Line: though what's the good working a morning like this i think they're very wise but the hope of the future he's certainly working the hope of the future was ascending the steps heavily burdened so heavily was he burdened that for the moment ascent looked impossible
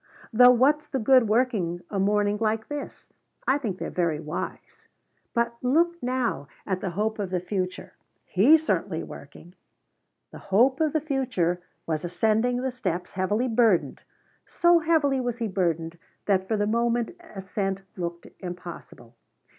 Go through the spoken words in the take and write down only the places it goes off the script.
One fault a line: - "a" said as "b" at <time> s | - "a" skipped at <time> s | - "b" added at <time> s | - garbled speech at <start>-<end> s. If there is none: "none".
- "look now at" added at 5.6 s